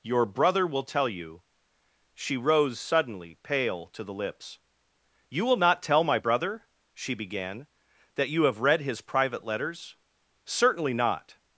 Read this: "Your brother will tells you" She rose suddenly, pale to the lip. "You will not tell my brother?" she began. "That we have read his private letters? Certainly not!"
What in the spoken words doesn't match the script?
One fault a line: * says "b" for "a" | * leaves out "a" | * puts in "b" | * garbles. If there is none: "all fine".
* says "tell" for "tells"
* says "lips" for "lip"
* says "you" for "we"